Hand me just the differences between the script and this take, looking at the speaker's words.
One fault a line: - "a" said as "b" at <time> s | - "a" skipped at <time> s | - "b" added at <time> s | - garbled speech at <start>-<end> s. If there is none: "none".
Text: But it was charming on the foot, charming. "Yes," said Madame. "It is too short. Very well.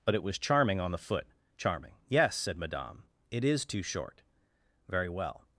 none